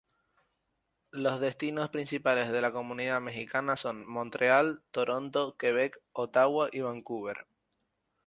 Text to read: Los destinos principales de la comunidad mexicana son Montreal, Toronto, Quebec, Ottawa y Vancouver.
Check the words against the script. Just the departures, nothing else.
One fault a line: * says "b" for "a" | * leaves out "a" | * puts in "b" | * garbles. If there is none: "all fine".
all fine